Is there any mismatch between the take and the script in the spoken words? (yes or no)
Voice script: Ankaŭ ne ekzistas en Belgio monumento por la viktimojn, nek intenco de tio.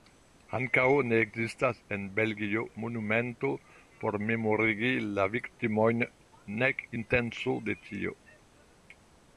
yes